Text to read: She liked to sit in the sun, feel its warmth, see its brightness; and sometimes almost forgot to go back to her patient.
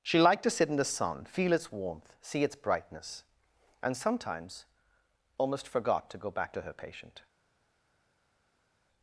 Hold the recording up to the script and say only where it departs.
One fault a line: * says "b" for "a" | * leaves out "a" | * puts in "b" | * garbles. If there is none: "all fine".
all fine